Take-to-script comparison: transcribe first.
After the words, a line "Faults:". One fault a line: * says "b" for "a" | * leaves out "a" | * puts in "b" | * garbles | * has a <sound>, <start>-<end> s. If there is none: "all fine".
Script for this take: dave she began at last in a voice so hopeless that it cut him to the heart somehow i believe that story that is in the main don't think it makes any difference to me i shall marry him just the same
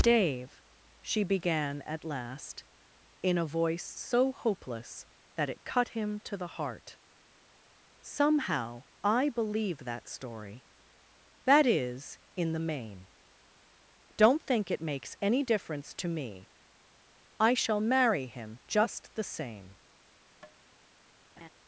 dave she began at last in a voice so hopeless that it cut him to the heart somehow i believe that story that is in the main don't think it makes any difference to me i shall marry him just the same
Faults:
* has a tap, 20.4-20.6 s
* has a laugh, 21.4-21.5 s